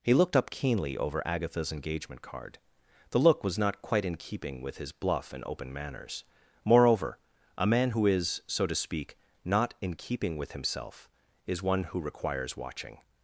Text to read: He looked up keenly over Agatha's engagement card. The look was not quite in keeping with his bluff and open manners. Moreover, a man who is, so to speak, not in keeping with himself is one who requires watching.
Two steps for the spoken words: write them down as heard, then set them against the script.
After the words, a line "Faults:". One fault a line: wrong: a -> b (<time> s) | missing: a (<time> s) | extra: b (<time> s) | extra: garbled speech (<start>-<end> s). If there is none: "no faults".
He looked up keenly over Agatha's engagement card. The look was not quite in keeping with his bluff and open manners. Moreover, a man who is, so to speak, not in keeping with himself is one who requires watching.
Faults:
no faults